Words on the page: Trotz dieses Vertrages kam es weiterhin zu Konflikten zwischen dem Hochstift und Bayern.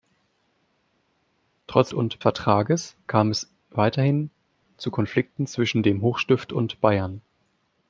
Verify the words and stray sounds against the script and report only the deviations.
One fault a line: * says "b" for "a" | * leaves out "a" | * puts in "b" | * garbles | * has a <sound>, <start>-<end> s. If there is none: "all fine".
* says "und" for "dieses"